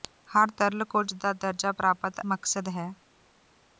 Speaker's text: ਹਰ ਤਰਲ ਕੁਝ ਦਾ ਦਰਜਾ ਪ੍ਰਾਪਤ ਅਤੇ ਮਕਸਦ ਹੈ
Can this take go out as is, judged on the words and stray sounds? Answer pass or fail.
fail